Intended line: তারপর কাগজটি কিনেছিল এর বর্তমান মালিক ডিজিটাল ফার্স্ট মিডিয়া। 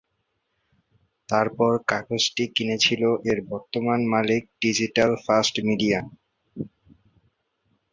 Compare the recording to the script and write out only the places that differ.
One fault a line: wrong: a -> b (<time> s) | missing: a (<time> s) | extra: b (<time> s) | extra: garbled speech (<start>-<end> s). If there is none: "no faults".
no faults